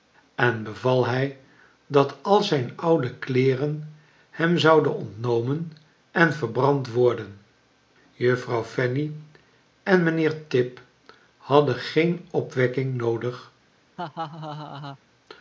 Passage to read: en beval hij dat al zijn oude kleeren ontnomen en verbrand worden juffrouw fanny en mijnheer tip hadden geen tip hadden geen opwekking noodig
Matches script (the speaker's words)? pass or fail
fail